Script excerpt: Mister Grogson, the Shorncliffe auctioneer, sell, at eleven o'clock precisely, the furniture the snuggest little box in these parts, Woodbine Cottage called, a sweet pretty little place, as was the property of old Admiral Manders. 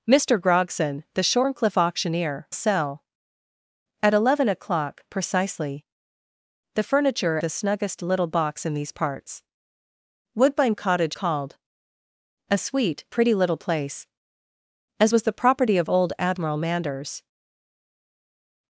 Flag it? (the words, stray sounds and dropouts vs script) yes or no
no